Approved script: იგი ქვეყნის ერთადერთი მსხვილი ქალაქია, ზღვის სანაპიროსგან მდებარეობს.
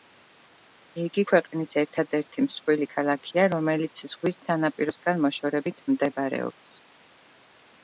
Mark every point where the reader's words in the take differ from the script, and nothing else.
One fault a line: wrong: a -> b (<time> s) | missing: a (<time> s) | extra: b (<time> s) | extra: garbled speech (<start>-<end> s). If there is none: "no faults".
extra: რომელიც (3.5 s)
extra: მოშორებით (5.3 s)